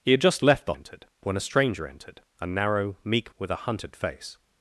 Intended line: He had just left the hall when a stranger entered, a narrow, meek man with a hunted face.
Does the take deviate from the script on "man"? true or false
true